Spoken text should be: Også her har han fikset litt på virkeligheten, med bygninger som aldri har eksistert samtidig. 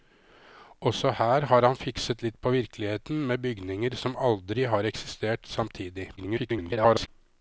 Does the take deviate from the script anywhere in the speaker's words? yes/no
yes